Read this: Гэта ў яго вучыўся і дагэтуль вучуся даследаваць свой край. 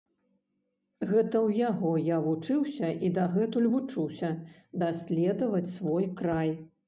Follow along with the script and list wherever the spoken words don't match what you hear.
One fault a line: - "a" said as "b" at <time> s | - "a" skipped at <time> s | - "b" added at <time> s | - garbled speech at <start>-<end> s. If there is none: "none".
- "я" added at 2.0 s